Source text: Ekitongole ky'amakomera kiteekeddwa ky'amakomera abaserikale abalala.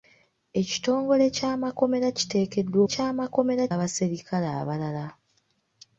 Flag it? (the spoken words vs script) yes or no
no